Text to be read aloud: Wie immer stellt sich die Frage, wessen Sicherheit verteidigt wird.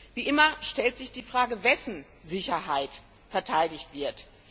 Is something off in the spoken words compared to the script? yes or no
no